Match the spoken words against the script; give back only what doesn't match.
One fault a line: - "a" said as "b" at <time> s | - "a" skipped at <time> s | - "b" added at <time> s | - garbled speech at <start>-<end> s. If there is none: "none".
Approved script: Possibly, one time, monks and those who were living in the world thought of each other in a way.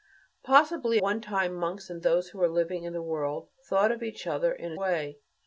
none